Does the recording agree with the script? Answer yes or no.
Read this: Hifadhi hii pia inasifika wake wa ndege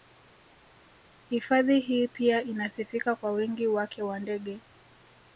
no